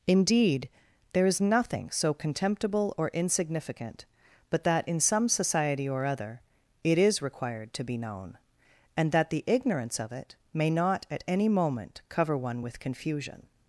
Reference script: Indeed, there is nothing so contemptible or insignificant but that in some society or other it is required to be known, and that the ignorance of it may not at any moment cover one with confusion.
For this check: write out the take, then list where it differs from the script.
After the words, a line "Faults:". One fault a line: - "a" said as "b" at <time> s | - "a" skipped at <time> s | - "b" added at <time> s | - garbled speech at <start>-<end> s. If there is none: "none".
Indeed, there is nothing so contemptible or insignificant but that in some society or other it is required to be known, and that the ignorance of it may not at any moment cover one with confusion.
Faults:
none